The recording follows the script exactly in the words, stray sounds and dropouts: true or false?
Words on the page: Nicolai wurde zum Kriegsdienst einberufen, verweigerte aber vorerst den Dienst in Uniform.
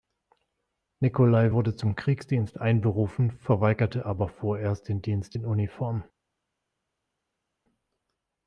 true